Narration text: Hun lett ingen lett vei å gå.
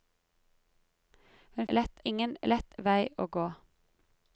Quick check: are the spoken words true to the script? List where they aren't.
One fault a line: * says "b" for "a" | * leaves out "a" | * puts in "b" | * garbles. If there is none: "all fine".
all fine